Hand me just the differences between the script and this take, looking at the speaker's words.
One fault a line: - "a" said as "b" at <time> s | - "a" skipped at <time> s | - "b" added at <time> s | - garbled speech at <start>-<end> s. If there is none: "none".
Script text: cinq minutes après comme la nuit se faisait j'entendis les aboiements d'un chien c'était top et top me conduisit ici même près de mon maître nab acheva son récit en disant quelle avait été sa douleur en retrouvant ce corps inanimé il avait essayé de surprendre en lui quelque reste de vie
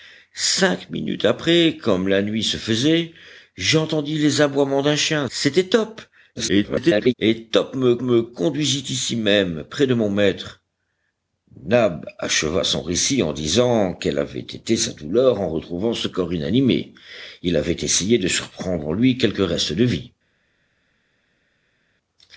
- garbled speech at 6.4-7.1 s
- "me" added at 8.0 s